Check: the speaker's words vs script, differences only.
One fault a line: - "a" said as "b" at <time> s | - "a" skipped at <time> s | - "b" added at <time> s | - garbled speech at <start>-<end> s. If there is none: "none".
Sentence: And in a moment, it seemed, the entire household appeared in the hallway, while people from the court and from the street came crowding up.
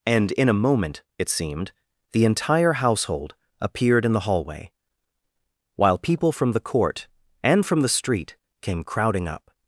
none